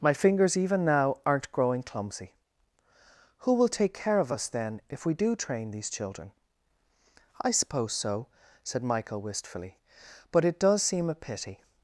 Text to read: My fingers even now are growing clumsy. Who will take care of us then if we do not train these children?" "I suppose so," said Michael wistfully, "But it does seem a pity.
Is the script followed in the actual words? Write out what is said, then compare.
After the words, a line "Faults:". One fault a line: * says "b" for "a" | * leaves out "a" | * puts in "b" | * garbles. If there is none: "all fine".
My fingers even now aren't growing clumsy. Who will take care of us then if we do train these children?" "I suppose so," said Michael wistfully, "But it does seem a pity.
Faults:
* says "aren't" for "are"
* leaves out "not"